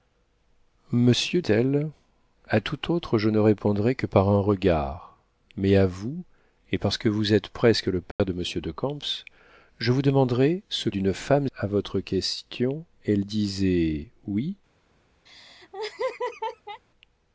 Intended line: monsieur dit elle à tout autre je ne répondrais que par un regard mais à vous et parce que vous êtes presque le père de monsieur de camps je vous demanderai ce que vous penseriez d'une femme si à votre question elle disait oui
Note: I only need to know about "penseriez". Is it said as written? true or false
false